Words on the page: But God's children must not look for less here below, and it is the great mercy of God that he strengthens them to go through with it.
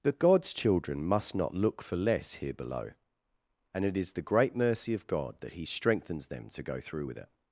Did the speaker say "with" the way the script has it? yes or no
yes